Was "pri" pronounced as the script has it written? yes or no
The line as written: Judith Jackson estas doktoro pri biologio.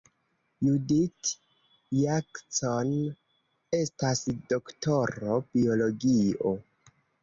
no